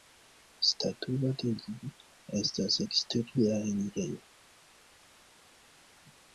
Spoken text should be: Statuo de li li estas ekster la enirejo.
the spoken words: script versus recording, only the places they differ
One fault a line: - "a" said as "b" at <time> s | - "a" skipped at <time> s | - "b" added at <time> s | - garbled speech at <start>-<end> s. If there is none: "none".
- "li" skipped at 1.9 s